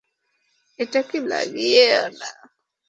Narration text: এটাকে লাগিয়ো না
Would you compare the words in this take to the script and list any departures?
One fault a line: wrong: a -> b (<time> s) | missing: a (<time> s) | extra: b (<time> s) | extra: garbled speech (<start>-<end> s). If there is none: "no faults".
no faults